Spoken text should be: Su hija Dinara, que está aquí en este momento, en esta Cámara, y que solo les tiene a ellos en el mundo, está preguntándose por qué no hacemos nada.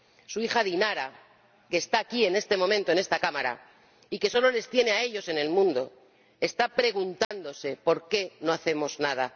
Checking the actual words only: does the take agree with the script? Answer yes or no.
yes